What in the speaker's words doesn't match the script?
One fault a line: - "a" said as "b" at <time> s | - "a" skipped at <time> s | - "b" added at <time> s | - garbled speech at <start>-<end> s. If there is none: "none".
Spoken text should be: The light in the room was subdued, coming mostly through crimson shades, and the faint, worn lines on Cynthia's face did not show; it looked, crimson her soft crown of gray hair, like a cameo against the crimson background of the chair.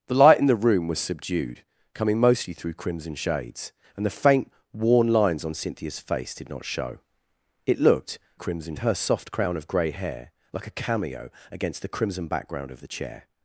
none